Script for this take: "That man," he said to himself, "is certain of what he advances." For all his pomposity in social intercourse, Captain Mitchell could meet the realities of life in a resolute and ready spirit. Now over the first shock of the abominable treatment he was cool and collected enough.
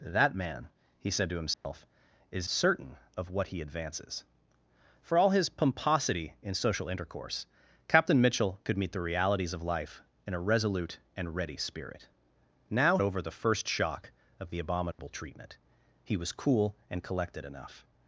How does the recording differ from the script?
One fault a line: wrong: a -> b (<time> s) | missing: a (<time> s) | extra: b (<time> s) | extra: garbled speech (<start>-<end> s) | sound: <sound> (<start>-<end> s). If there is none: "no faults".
sound: dropout (1.5-1.6 s)
sound: dropout (14.9-15.0 s)